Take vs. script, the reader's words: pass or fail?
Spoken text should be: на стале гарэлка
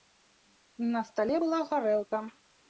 fail